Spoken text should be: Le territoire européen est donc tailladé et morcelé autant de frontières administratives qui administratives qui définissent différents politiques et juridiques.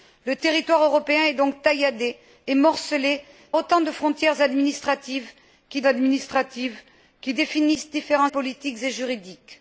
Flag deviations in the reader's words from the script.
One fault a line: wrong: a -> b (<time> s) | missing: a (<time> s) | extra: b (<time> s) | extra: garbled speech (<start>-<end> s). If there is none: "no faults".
no faults